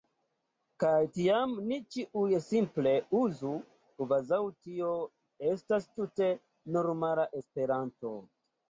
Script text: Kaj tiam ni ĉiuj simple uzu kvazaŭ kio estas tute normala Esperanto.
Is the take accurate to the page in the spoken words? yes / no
no